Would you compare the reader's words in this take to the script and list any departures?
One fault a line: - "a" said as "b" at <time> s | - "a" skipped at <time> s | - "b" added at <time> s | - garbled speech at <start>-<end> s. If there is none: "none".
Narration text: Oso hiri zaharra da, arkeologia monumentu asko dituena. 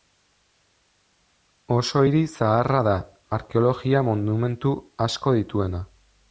none